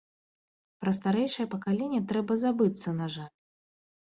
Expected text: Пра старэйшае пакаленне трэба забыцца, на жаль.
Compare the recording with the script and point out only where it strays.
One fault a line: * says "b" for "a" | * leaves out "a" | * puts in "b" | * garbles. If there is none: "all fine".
all fine